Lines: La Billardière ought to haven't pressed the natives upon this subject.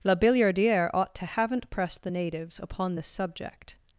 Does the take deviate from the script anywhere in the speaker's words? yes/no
no